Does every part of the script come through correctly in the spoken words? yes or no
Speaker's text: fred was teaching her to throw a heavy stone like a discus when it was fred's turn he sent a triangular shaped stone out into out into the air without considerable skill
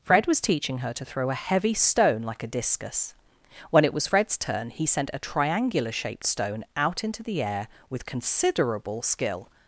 no